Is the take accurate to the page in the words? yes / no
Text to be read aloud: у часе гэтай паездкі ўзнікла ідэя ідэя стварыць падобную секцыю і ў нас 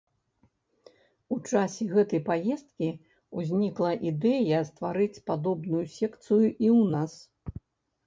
no